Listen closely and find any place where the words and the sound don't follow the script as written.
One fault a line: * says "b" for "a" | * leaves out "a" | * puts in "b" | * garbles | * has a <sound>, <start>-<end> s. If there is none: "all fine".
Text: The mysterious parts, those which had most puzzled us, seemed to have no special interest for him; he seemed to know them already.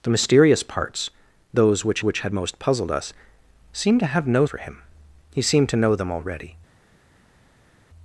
* puts in "which"
* leaves out "special interest"